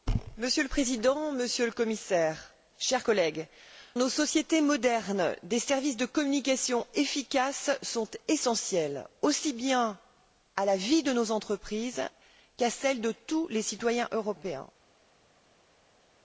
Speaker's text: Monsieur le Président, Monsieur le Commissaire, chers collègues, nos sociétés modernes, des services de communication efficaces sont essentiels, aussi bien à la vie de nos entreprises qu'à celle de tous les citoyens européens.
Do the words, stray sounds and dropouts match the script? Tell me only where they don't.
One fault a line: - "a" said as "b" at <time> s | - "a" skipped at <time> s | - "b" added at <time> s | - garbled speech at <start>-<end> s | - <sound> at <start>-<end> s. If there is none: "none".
none